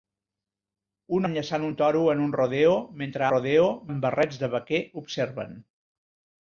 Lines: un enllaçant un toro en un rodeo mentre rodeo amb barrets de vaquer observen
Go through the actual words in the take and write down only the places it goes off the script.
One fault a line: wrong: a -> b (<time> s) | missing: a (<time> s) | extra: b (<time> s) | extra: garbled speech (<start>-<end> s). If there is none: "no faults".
no faults